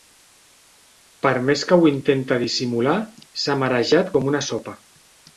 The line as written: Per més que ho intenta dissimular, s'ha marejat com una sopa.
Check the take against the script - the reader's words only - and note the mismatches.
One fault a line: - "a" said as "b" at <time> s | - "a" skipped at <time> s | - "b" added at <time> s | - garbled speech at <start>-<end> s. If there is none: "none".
none